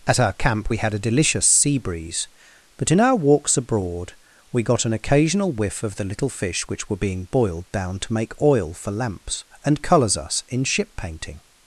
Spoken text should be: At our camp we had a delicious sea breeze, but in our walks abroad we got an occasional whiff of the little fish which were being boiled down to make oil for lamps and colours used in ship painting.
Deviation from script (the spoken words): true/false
true